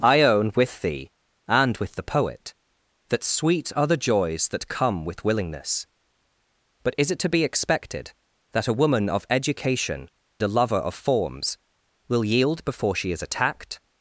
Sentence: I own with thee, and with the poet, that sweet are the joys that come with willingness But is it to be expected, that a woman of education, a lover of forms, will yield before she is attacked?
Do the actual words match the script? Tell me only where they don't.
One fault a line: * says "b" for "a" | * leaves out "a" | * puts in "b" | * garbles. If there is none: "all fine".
all fine